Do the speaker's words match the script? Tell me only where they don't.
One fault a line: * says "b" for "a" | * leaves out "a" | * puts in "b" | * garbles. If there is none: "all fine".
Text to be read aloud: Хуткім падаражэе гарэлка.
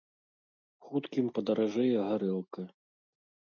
all fine